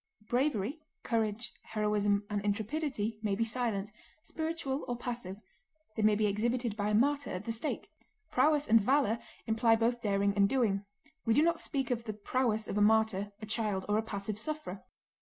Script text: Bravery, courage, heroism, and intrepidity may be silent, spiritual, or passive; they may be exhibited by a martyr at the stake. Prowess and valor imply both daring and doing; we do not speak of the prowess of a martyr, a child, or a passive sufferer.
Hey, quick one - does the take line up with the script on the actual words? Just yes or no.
yes